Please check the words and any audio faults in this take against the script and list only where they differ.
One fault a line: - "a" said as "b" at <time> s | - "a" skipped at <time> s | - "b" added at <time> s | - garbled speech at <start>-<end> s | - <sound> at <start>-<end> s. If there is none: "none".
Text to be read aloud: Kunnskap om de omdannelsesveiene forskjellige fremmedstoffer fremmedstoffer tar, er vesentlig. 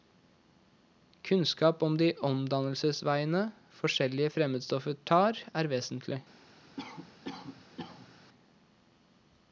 - "fremmedstoffer" skipped at 5.0 s
- cough at 6.8-8.2 s